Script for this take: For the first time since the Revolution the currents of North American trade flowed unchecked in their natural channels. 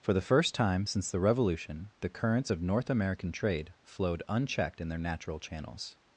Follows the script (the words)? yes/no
yes